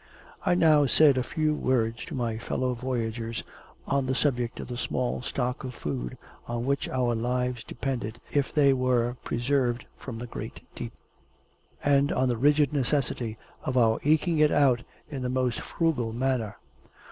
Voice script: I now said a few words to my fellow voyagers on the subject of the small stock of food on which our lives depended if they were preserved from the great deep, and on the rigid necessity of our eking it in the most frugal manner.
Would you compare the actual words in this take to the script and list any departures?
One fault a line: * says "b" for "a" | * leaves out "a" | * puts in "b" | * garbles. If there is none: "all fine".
* puts in "out"